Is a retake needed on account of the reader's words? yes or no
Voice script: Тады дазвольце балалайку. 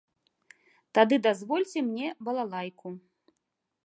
yes